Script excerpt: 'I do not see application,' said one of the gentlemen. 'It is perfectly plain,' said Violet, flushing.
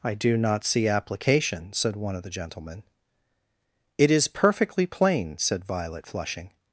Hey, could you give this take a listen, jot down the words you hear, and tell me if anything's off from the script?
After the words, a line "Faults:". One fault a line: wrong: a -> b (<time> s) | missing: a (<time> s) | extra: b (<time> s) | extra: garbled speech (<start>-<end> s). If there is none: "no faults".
'I do not see application,' said one of the gentlemen. 'It is perfectly plain,' said Violet, flushing.
Faults:
no faults